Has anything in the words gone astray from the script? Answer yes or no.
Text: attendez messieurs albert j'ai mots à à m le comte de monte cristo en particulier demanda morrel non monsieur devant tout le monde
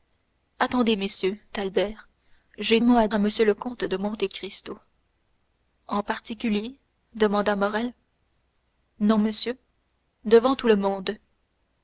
no